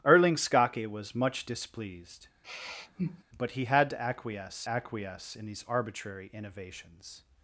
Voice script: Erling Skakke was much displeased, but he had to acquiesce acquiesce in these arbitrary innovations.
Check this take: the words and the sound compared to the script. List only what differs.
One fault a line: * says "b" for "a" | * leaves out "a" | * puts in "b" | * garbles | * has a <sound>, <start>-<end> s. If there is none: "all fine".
* has a sigh, 2.4-3.2 s